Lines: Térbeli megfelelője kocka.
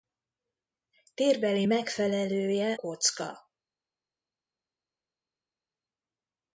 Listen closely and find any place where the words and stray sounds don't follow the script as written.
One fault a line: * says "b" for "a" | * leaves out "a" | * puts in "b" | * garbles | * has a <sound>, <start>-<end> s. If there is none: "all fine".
all fine